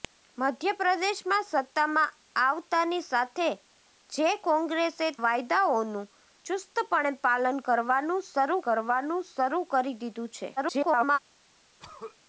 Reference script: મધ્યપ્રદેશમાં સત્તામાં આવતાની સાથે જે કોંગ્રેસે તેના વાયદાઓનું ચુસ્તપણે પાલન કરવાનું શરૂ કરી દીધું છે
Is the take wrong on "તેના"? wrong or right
wrong